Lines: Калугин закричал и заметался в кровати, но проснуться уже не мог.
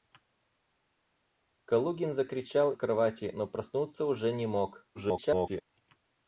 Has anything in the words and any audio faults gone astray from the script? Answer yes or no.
yes